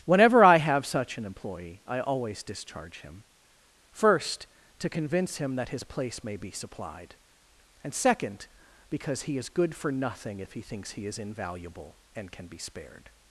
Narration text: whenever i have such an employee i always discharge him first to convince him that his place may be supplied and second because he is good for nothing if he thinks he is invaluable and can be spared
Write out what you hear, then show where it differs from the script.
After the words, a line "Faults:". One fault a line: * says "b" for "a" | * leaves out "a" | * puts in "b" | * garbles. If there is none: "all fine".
whenever i have such an employee i always discharge him first to convince him that his place may be supplied and second because he is good for nothing if he thinks he is invaluable and can be spared
Faults:
all fine